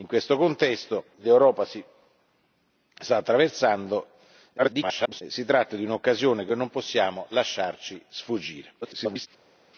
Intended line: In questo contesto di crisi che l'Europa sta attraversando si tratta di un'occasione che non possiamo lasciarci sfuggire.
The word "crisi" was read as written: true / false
false